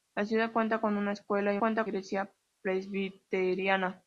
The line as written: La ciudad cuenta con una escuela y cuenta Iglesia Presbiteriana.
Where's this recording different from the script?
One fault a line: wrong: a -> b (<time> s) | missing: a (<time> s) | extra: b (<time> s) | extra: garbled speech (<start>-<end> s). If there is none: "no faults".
no faults